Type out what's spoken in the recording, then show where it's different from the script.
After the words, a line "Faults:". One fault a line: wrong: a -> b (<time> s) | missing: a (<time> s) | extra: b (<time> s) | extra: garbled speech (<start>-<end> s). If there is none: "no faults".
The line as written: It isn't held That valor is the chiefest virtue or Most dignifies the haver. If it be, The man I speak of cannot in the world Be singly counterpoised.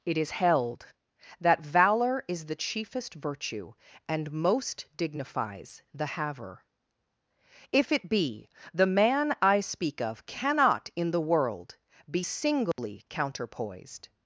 It is held That valor is the chiefest virtue and Most dignifies the haver. If it be, The man I speak of cannot in the world Be singly counterpoised.
Faults:
wrong: isn't -> is (0.2 s)
wrong: or -> and (4.1 s)